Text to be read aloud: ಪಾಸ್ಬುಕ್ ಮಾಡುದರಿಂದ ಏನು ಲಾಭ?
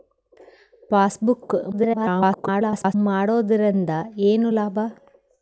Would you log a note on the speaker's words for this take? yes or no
yes